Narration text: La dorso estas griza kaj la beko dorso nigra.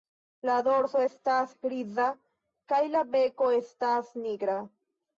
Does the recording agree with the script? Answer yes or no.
no